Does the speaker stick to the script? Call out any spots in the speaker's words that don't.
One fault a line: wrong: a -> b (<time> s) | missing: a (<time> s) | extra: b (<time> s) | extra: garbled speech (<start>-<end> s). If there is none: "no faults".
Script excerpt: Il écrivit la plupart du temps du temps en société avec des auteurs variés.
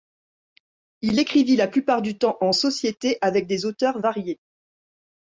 missing: du temps (2.4 s)